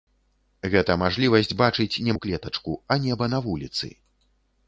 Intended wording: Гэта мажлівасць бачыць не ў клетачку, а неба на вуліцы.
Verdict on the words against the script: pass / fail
pass